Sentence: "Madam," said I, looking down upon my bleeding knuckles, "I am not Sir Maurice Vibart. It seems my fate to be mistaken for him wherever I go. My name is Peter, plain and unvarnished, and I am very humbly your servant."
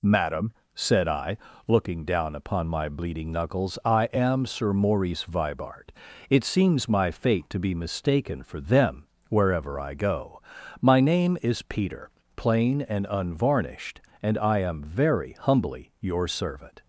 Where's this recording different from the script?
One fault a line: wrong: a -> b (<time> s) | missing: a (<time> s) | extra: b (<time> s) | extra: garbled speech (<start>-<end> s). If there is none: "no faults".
missing: not (4.5 s)
wrong: him -> them (8.6 s)